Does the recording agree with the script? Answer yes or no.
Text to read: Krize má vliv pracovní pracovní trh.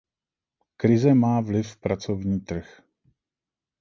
no